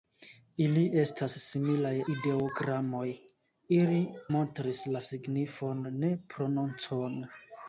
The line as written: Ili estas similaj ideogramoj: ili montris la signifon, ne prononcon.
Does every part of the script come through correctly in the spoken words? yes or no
yes